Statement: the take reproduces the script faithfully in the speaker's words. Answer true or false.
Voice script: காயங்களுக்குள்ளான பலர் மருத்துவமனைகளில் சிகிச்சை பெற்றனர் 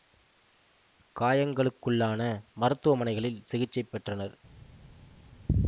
false